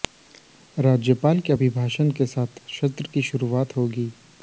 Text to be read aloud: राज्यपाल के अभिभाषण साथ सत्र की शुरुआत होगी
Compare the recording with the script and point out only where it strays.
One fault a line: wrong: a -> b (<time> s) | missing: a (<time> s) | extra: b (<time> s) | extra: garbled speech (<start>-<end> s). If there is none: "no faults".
extra: के (2.1 s)